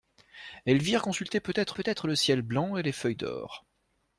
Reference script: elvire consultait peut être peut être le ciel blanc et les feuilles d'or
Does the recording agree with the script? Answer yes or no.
yes